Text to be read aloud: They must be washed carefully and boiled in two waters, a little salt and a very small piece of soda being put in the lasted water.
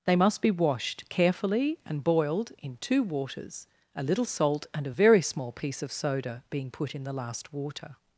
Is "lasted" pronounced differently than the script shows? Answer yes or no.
yes